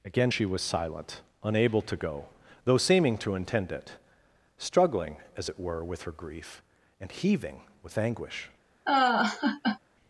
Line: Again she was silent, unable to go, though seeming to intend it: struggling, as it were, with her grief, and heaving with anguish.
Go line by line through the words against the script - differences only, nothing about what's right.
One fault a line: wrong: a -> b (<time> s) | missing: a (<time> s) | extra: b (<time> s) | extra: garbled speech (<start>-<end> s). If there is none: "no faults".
no faults